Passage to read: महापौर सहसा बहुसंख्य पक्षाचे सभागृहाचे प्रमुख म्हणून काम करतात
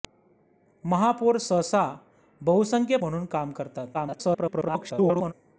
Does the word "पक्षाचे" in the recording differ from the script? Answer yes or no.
yes